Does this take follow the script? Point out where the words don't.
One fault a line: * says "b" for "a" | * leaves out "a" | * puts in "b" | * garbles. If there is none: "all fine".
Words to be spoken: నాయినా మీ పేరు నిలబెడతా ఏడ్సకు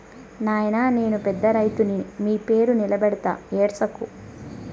* puts in "నేను పెద్ద రైతుని"